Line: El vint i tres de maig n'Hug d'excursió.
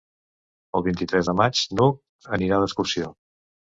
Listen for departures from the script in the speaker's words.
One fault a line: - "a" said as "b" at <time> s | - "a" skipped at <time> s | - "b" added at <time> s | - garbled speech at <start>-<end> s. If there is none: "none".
- "anirà" added at 2.4 s